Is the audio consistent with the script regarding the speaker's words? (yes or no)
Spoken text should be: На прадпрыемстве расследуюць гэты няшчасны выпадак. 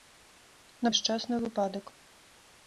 no